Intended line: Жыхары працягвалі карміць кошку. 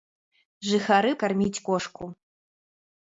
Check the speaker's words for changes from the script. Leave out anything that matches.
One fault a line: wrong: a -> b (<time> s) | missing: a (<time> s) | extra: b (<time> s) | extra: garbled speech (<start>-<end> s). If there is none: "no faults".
missing: працягвалі (1.1 s)